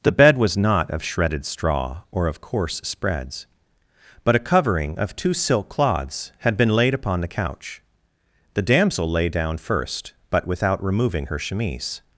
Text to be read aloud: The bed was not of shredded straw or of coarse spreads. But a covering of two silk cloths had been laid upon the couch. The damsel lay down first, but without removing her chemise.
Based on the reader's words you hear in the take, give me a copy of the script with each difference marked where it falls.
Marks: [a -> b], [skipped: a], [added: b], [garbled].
The bed was not of shredded straw or of coarse spreads. But a covering of two silk cloths had been laid upon the couch. The damsel lay down first, but without removing her chemise.